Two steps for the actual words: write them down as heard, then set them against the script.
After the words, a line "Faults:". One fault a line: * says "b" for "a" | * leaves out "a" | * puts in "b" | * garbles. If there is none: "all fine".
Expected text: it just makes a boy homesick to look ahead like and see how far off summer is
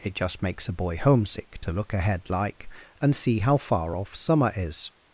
it just makes a boy homesick to look ahead like and see how far off summer is
Faults:
all fine